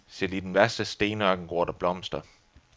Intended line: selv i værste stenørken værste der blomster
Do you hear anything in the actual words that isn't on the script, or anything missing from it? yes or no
yes